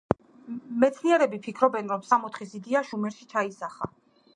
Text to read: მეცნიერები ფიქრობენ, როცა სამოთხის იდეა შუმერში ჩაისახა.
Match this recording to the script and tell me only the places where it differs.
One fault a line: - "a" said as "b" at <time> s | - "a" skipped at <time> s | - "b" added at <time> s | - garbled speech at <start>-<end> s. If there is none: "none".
- "როცა" said as "რომ" at 1.9 s